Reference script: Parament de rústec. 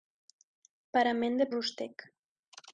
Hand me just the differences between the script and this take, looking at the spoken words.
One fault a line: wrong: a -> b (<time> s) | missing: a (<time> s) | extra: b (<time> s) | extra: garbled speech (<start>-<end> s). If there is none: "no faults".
no faults